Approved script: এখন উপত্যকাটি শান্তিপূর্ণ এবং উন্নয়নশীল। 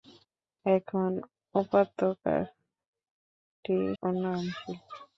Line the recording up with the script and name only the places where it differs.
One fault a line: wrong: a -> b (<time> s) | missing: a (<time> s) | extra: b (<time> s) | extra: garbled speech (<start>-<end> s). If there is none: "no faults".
missing: শান্তিপূর্ণ এবং (2.1 s)